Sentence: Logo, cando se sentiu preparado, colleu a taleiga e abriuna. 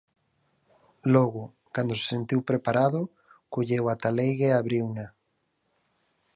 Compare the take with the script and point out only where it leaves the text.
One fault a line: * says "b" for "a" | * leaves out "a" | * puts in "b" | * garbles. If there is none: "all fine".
all fine